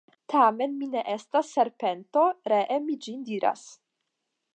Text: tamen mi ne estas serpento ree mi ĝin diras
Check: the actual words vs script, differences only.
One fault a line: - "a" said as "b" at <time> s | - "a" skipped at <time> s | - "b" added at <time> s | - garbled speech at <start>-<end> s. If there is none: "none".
none